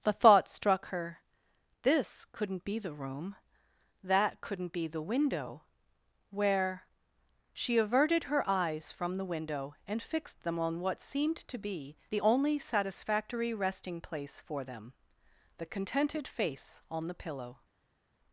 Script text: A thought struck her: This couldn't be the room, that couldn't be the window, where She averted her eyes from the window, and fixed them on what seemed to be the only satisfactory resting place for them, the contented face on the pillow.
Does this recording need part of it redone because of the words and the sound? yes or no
yes